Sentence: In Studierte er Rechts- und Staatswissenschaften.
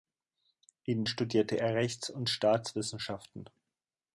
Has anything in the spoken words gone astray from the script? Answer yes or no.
no